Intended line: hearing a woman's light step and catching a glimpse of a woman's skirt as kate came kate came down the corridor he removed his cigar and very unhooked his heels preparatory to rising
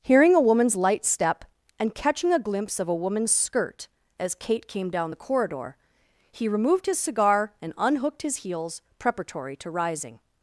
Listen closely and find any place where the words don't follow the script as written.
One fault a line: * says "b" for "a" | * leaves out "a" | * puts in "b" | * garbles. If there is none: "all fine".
* leaves out "kate came"
* leaves out "very"